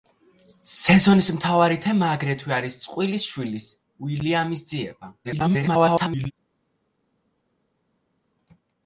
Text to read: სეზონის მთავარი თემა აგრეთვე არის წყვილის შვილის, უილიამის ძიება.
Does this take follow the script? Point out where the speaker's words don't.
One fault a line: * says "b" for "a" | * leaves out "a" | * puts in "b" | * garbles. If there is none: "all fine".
* garbles